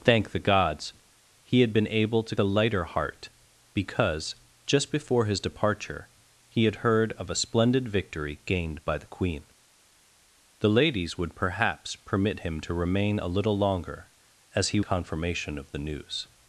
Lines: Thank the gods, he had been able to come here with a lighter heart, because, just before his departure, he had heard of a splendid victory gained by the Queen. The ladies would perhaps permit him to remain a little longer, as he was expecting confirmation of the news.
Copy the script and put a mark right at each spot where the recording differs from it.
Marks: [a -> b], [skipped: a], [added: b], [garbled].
Thank the gods, he had been able to [skipped: come here with] a lighter heart, because, just before his departure, he had heard of a splendid victory gained by the Queen. The ladies would perhaps permit him to remain a little longer, as he [skipped: was expecting] confirmation of the news.